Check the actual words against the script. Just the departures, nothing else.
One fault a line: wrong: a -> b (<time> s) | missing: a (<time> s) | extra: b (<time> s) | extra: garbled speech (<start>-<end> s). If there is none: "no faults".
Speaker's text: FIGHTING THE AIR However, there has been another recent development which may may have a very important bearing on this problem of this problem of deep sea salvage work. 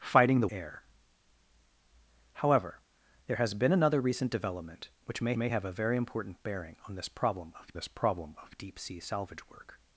no faults